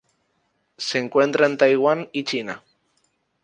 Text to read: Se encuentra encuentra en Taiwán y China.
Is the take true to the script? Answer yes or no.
no